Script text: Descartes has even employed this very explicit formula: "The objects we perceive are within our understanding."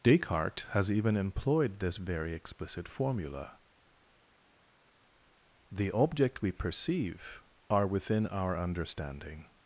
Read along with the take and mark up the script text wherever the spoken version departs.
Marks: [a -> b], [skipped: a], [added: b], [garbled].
Descartes has even employed this very explicit formula: "The [objects -> object] we perceive are within our understanding."